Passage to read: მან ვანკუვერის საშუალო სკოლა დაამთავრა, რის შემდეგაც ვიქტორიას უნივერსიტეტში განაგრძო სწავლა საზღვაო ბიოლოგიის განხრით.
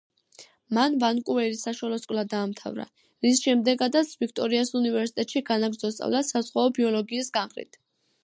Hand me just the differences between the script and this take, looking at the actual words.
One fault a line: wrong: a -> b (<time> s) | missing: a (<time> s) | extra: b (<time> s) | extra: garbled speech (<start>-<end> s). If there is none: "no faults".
no faults